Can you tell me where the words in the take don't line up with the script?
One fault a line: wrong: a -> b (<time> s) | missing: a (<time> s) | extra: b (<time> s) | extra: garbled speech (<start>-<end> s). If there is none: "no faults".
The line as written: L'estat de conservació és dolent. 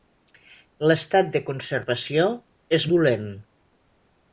no faults